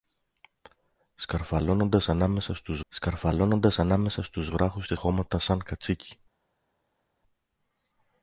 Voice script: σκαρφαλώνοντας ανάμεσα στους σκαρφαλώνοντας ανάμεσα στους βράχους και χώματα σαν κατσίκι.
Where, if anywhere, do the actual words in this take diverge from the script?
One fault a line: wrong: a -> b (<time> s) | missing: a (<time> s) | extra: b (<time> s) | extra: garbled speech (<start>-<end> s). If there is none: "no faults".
no faults